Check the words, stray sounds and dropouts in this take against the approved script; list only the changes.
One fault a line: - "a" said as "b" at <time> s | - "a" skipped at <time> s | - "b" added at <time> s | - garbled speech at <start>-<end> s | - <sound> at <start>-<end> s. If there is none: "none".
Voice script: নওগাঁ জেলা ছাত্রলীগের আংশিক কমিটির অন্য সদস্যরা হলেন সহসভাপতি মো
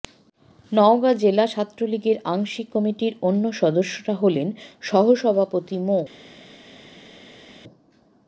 none